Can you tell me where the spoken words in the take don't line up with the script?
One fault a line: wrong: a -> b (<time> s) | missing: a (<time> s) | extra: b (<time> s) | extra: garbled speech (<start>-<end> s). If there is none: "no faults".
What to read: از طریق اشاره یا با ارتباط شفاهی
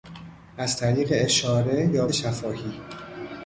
missing: با ارتباط (2.1 s)